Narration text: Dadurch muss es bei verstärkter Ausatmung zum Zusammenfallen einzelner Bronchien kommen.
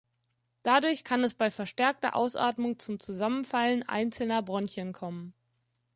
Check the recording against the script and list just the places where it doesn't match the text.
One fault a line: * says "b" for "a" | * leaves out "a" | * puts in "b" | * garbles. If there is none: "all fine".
* says "kann" for "muss"